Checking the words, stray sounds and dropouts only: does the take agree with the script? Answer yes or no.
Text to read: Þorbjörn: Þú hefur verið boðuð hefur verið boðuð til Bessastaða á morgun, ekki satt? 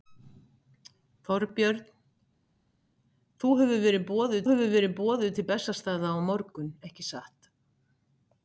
yes